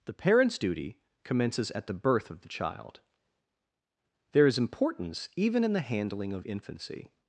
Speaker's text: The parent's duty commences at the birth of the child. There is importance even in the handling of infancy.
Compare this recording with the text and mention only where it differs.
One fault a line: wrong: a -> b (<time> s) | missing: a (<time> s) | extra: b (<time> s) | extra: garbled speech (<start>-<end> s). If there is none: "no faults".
no faults